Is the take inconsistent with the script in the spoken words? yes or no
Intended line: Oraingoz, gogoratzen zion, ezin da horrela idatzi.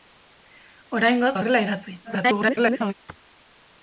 yes